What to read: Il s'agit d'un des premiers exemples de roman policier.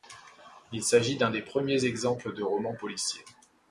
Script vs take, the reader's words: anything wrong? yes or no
no